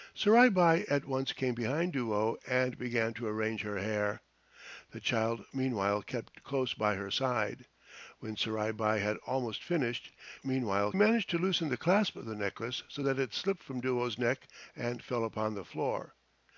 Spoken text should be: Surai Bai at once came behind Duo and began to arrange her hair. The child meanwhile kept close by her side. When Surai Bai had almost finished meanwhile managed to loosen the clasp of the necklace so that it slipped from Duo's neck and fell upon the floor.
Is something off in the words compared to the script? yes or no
no